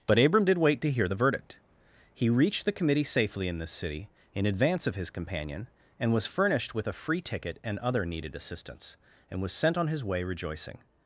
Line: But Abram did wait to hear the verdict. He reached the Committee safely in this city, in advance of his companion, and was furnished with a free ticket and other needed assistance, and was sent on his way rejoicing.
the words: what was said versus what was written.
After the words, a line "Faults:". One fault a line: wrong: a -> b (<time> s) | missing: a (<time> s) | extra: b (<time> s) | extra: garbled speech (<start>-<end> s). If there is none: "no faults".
But Abram did wait to hear the verdict. He reached the Committee safely in this city, in advance of his companion, and was furnished with a free ticket and other needed assistance, and was sent on his way rejoicing.
Faults:
no faults